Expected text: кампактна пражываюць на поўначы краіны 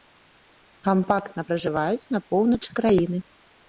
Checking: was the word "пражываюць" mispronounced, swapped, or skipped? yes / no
no